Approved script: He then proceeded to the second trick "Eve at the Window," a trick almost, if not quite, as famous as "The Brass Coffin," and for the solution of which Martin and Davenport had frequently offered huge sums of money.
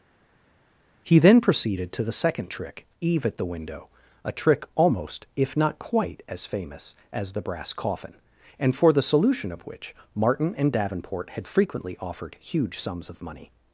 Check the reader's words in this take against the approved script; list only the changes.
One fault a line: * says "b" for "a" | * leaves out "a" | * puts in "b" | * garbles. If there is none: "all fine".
all fine